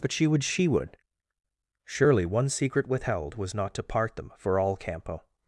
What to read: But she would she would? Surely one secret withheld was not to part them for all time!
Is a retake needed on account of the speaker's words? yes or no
yes